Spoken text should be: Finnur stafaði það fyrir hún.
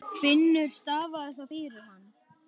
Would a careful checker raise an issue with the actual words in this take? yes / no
yes